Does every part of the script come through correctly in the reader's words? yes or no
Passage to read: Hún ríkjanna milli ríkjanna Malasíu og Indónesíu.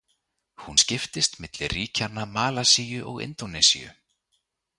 no